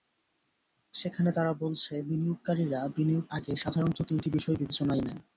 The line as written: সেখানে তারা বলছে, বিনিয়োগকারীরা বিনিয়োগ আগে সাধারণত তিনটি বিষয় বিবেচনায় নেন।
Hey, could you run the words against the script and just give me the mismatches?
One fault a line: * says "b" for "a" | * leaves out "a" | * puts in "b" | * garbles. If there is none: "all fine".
all fine